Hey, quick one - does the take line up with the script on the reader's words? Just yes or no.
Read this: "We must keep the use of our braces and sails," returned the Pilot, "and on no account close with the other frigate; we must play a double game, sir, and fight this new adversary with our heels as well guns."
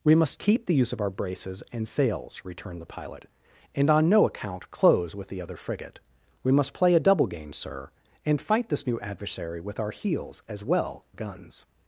yes